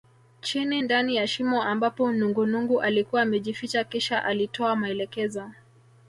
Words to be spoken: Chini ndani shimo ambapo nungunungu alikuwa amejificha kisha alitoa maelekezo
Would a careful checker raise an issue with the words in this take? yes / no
yes